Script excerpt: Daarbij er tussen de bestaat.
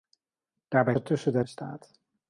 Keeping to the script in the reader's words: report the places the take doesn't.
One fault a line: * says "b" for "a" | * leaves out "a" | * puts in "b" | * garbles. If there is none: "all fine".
all fine